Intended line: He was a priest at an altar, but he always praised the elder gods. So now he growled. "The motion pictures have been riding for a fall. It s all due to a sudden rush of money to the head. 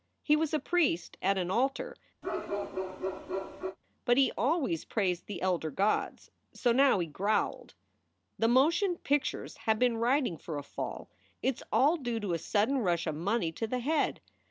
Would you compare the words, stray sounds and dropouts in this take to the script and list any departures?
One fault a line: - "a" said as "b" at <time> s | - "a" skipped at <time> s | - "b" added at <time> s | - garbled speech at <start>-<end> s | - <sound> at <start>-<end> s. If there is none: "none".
- bark at 2.2-3.8 s